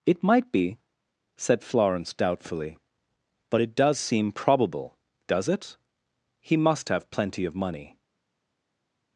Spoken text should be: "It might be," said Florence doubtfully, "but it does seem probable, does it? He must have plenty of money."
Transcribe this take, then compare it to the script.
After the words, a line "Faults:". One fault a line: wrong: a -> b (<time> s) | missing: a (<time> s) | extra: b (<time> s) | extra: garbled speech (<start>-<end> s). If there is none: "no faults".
"It might be," said Florence doubtfully, "but it does seem probable, does it? He must have plenty of money."
Faults:
no faults